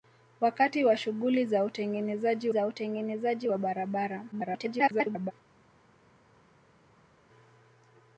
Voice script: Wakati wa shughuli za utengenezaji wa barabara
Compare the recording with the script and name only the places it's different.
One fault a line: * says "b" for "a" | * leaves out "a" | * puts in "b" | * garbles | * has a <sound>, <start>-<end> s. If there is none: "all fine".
* puts in "za utengenezaji"
* garbles